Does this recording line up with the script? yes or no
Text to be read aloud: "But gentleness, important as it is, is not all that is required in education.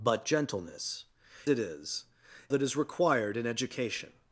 no